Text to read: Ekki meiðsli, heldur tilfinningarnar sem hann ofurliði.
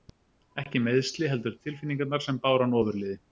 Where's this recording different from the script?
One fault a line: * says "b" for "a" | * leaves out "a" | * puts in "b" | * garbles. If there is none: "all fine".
* puts in "báru"